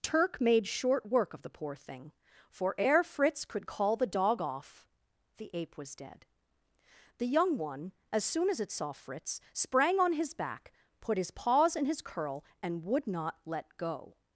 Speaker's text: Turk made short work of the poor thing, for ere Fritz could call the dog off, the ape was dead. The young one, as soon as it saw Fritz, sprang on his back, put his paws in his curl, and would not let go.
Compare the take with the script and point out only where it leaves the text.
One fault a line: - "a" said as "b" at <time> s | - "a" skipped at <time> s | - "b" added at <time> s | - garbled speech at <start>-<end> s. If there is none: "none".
none